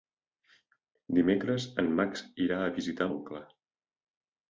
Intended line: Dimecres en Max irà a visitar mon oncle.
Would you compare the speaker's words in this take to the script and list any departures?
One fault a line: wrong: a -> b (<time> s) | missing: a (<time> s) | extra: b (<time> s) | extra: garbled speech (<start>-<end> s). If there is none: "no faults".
missing: mon (3.1 s)